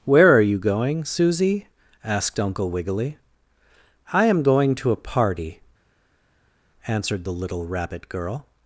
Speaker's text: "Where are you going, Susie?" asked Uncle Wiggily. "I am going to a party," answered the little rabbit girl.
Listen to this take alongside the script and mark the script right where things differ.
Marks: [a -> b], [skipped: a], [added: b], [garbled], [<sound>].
"Where are you going, Susie?" asked Uncle Wiggily. "I am going to a party," answered the little rabbit girl.